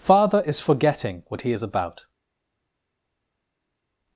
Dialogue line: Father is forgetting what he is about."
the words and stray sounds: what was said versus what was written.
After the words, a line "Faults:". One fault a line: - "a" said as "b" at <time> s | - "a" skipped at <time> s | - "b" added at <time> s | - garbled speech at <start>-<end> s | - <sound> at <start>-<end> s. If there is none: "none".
Father is forgetting what he is about."
Faults:
none